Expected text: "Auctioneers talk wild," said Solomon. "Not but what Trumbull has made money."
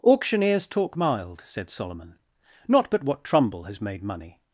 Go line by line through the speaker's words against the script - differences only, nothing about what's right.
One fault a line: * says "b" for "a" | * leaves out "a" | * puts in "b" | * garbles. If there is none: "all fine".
* says "mild" for "wild"